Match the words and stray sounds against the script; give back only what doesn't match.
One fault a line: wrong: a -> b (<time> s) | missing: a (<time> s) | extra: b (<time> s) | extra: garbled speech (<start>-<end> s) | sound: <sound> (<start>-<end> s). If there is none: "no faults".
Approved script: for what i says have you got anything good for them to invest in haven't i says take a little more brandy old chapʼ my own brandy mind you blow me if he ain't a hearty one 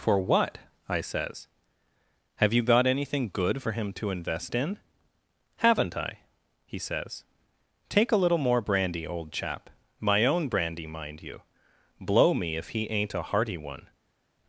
wrong: them -> him (3.7 s)
extra: he (6.7 s)